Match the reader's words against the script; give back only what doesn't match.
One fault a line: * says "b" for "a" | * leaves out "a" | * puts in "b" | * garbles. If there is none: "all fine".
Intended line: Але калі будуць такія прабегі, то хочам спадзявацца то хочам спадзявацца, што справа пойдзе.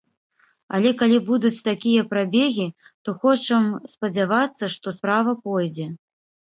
* leaves out "то хочам спадзявацца"